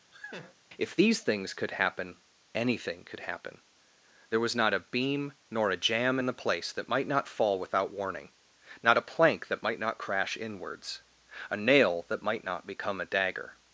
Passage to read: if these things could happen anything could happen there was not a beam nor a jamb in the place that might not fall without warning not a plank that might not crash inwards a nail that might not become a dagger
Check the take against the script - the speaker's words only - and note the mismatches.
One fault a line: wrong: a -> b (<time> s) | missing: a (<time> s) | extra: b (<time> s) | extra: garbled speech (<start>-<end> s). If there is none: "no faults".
no faults